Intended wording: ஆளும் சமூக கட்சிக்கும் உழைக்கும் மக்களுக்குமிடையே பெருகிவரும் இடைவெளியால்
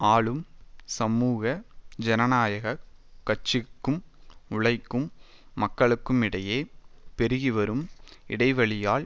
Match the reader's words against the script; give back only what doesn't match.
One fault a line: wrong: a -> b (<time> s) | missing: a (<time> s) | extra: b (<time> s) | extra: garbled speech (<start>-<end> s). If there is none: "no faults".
extra: ஜனநாயக (2.0 s)